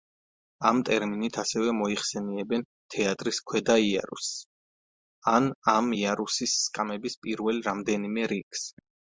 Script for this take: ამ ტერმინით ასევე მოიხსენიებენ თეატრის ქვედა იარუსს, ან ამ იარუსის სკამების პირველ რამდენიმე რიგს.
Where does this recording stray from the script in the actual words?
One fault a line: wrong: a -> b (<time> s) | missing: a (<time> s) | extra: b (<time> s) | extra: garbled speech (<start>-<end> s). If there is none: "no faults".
no faults